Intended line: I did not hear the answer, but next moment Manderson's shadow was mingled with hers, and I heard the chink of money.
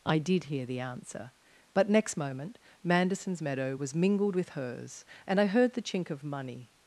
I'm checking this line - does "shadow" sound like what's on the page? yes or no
no